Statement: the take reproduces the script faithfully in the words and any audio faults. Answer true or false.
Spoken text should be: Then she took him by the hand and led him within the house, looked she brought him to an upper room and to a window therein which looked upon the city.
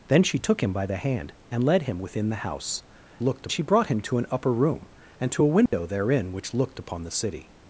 false